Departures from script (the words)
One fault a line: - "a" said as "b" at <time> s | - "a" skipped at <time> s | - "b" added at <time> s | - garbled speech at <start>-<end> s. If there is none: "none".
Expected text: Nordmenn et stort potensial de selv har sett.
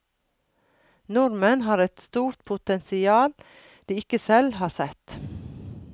- "har" added at 1.7 s
- "ikke" added at 4.0 s